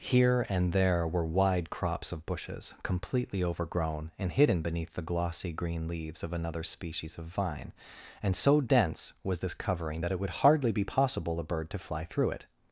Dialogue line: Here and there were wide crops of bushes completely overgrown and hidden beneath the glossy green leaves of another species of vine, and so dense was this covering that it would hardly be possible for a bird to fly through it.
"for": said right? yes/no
no